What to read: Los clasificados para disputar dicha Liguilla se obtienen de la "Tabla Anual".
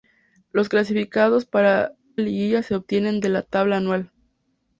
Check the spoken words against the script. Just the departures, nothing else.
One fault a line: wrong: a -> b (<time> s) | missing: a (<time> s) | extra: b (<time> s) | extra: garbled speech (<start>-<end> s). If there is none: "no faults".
missing: disputar dicha (1.9 s)